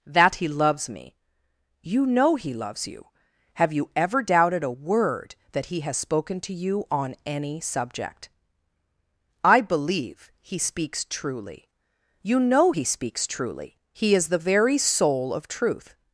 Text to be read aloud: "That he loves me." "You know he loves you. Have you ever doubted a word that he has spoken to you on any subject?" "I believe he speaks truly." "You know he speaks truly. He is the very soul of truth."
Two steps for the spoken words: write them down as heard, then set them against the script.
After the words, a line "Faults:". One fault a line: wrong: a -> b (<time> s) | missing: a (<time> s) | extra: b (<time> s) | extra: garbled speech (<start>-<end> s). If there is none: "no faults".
"That he loves me." "You know he loves you. Have you ever doubted a word that he has spoken to you on any subject?" "I believe he speaks truly." "You know he speaks truly. He is the very soul of truth."
Faults:
no faults